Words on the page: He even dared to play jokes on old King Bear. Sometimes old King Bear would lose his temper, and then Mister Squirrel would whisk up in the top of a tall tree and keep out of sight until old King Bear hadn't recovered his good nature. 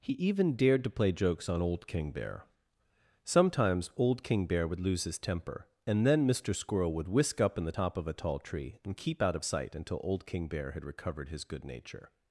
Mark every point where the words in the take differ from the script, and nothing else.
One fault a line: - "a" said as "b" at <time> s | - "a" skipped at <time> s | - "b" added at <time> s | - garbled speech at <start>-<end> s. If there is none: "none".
- "hadn't" said as "had" at 10.7 s